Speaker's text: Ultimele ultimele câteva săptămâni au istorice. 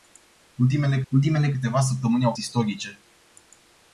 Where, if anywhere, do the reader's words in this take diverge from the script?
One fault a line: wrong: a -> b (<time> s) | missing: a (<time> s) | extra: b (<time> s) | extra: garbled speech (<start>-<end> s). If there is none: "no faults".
no faults